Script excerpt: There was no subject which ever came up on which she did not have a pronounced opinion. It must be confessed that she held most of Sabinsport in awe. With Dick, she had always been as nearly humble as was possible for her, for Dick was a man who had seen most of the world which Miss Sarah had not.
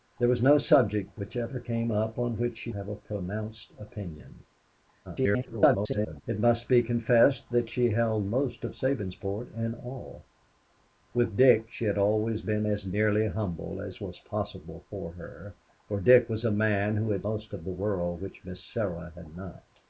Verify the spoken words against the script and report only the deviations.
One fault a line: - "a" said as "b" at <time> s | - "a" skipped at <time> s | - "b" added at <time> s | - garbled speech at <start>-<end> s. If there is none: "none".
- "did not" skipped at 2.7 s
- garbled speech at 5.0-6.2 s
- "seen" skipped at 17.3 s